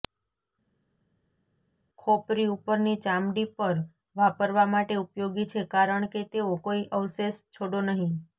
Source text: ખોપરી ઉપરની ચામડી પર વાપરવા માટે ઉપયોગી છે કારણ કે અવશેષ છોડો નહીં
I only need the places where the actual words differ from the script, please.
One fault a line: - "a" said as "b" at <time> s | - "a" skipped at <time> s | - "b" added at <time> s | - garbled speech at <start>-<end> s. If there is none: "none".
- "તેઓ કોઈ" added at 6.3 s